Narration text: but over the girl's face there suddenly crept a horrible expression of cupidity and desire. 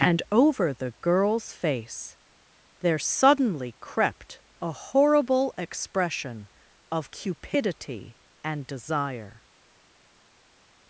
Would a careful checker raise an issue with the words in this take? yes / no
yes